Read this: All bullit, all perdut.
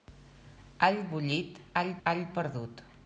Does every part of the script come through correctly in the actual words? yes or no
no